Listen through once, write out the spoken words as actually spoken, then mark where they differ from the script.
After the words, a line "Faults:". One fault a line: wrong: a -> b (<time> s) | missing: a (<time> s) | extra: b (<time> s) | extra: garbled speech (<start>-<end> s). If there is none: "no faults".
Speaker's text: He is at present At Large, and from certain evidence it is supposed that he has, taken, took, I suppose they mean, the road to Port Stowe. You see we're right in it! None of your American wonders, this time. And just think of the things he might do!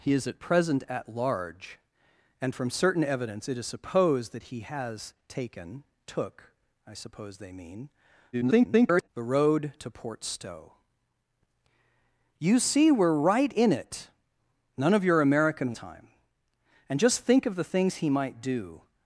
He is at present At Large, and from certain evidence it is supposed that he has, taken, took, I suppose they mean, [garbled] the road to Port Stowe. You see we're right in it! None of your American time. And just think of the things he might do!
Faults:
extra: garbled speech (8.3-9.1 s)
missing: wonders this (15.7 s)